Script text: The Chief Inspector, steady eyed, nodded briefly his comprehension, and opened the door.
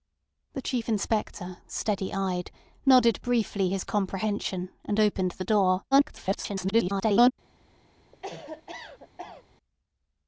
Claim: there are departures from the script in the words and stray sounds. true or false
true